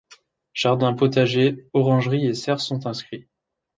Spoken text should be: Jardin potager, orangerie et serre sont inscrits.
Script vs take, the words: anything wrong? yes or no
no